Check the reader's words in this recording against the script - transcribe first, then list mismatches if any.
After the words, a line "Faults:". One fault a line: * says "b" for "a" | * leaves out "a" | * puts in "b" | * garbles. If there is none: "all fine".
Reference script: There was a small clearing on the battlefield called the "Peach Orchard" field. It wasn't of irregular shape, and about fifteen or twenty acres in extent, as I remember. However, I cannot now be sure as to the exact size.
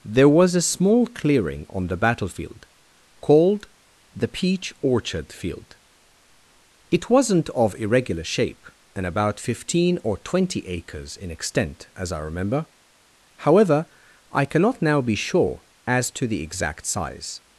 There was a small clearing on the battlefield called the "Peach Orchard" field. It wasn't of irregular shape, and about fifteen or twenty acres in extent, as I remember. However, I cannot now be sure as to the exact size.
Faults:
all fine